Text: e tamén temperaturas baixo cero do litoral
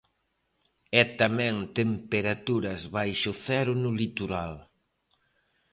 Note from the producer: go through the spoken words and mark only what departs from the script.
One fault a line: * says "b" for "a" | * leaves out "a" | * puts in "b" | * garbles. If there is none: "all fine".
* says "no" for "do"